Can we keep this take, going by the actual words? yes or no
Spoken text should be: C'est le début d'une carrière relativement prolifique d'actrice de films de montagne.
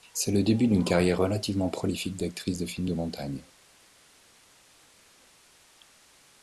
yes